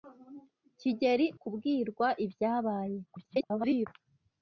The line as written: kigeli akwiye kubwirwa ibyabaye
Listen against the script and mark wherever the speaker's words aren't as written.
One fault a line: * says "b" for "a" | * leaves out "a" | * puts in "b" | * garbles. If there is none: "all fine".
* leaves out "akwiye"
* garbles